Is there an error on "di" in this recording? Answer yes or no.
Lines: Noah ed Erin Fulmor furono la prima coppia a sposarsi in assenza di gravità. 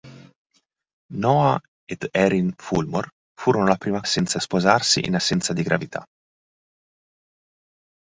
no